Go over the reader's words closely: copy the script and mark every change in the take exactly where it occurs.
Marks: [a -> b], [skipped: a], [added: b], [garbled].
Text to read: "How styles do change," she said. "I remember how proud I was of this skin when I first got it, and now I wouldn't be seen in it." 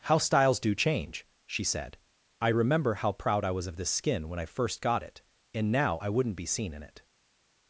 "How styles do change," she said. "I remember how proud I was of this skin when I first got it, and now I wouldn't be seen in it."